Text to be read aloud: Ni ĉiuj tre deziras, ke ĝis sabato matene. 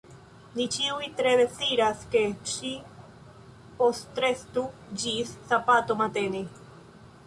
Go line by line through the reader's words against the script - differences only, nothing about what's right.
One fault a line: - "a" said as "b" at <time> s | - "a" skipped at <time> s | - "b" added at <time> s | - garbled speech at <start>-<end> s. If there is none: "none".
- "ŝi postrestu" added at 2.5 s